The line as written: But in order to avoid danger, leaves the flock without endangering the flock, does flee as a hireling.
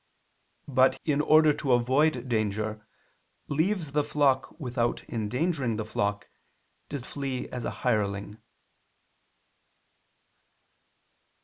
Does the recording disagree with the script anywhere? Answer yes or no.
no